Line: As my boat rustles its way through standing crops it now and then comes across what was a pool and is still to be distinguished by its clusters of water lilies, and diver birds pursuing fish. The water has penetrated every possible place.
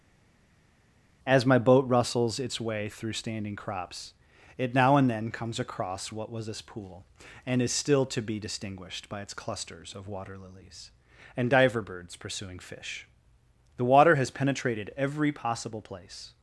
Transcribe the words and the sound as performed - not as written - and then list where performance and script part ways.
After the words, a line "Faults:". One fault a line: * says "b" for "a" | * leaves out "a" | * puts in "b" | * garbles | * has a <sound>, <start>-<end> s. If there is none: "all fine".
As my boat rustles its way through standing crops it now and then comes across what was this pool and is still to be distinguished by its clusters of water lilies, and diver birds pursuing fish. The water has penetrated every possible place.
Faults:
* says "this" for "a"